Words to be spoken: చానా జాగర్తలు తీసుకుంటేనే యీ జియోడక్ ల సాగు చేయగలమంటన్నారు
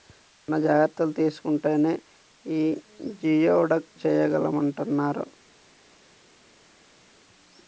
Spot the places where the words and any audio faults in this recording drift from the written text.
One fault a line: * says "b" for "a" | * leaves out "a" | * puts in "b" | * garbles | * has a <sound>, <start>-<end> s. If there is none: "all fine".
* leaves out "ల సాగు"